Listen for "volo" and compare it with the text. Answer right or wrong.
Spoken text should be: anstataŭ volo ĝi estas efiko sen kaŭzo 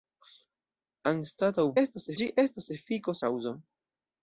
wrong